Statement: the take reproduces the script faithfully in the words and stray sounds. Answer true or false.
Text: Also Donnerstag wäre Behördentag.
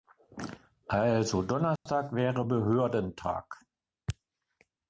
false